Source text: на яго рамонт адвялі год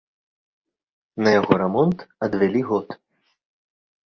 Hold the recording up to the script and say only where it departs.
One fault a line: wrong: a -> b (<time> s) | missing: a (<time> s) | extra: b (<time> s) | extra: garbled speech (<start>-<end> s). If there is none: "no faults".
no faults